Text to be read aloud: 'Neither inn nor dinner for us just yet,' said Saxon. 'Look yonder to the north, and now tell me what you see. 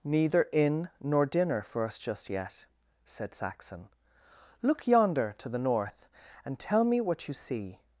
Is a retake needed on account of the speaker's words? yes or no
yes